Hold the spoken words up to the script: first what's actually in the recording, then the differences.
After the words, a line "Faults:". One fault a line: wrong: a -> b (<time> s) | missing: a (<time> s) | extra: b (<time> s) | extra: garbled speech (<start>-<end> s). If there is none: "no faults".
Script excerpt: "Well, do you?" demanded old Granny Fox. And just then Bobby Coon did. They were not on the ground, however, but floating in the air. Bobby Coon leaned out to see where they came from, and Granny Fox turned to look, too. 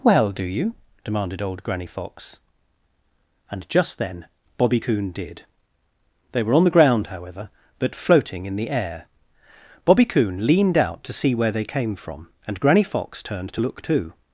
"Well, do you?" demanded old Granny Fox. And just then Bobby Coon did. They were on the ground, however, but floating in the air. Bobby Coon leaned out to see where they came from, and Granny Fox turned to look, too.
Faults:
missing: not (6.5 s)